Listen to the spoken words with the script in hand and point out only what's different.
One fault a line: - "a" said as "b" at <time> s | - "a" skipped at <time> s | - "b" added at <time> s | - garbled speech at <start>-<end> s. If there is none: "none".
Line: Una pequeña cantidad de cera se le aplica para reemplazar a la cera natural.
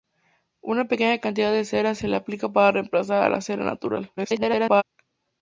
- garbled speech at 4.2-4.8 s